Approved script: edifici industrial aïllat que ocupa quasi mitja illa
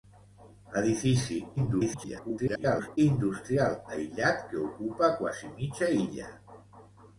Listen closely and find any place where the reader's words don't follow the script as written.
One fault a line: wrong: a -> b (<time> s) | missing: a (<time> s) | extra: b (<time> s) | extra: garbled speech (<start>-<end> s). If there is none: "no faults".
extra: garbled speech (1.6-3.0 s)